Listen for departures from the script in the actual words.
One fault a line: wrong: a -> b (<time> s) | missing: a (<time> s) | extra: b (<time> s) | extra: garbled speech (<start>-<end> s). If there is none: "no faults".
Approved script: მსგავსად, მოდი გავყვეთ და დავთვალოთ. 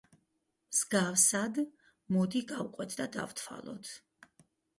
no faults